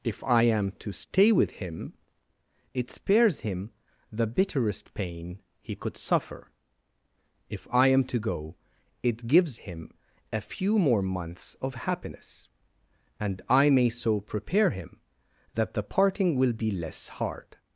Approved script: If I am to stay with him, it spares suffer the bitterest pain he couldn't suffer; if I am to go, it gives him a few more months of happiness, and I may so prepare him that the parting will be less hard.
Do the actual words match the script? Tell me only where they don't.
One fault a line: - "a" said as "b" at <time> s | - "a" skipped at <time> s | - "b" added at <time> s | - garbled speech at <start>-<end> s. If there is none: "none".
- "suffer" said as "him" at 3.4 s
- "couldn't" said as "could" at 5.8 s